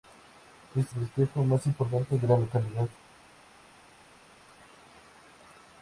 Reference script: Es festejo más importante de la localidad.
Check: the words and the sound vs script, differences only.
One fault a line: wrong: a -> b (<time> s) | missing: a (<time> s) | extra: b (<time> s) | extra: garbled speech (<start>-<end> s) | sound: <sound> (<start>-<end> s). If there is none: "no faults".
no faults